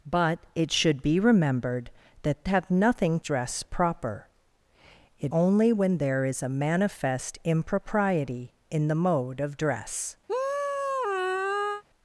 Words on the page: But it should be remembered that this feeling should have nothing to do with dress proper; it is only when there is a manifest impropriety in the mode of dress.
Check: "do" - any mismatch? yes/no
yes